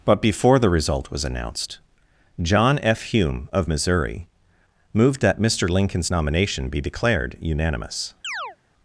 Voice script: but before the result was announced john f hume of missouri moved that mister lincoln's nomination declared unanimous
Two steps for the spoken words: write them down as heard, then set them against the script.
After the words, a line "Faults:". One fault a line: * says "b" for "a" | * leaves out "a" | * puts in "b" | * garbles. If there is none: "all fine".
but before the result was announced john f hume of missouri moved that mister lincoln's nomination be declared unanimous
Faults:
* puts in "be"